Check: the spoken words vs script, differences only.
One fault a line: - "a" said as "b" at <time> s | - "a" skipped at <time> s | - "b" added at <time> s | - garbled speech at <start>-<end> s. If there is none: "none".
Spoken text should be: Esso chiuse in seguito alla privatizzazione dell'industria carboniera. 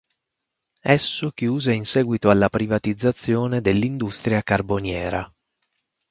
none